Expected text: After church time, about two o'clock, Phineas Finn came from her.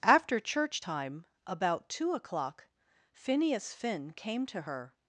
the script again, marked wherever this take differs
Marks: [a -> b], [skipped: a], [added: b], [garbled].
After church time, about two o'clock, Phineas Finn came [from -> to] her.